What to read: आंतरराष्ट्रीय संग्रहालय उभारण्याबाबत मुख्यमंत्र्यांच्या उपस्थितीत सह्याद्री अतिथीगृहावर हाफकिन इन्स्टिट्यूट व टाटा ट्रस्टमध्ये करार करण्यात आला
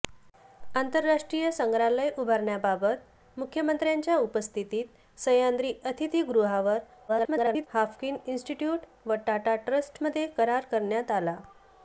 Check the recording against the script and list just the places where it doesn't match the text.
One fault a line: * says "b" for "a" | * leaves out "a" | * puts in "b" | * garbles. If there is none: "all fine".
* garbles